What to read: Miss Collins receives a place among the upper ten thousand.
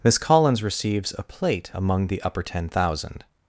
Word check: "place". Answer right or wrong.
wrong